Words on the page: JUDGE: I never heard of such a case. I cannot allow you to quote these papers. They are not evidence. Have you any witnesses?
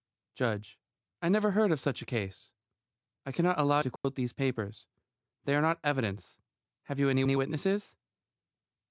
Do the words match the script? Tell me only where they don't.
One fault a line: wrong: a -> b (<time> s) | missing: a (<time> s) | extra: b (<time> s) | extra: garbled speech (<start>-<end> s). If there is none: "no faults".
missing: you (3.8 s)
extra: any (7.2 s)